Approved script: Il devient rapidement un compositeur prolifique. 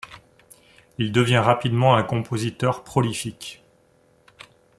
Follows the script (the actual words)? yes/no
yes